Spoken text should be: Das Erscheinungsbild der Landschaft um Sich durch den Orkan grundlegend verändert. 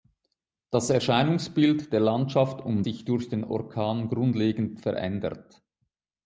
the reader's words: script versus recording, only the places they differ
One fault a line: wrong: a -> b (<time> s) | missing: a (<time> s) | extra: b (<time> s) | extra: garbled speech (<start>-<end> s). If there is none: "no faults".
no faults